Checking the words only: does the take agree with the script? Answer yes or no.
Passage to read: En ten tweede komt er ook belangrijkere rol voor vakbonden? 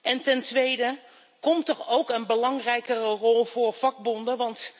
no